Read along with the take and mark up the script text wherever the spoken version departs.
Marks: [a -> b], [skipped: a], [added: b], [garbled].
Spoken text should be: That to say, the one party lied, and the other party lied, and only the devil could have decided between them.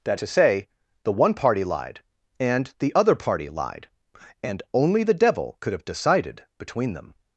That to say, the one party lied, and the other party lied, and only the devil could have decided between them.